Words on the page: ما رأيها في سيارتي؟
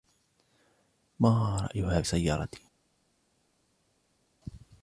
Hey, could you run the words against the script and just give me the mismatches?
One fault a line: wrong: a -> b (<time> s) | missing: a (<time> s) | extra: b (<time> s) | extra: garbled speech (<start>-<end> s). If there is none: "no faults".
missing: في (2.0 s)